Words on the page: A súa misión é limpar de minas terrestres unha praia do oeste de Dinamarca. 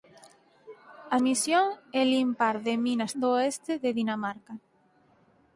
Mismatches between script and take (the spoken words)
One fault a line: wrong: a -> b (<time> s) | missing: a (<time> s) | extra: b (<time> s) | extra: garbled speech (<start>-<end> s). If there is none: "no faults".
missing: súa (1.2 s)
missing: terrestres unha praia (3.1 s)